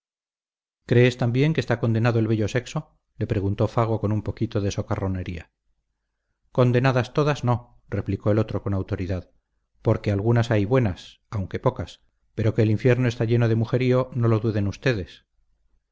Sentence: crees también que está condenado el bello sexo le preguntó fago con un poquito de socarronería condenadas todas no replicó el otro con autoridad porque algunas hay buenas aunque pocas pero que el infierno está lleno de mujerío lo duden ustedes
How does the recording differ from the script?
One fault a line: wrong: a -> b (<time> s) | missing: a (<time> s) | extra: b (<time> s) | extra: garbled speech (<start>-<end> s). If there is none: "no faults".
extra: no (14.1 s)